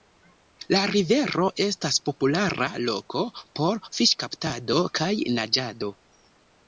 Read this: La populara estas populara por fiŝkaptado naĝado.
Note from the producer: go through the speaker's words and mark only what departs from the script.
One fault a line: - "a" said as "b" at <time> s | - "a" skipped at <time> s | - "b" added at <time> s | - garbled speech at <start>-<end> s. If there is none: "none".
- "populara" said as "rivero" at 0.9 s
- "loko" added at 2.9 s
- "kaj" added at 5.0 s